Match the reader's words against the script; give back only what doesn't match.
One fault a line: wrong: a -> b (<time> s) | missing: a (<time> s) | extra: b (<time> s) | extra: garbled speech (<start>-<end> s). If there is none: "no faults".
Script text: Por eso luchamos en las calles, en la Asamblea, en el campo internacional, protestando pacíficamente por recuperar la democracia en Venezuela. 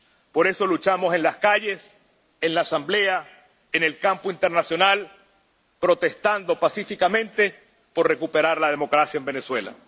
no faults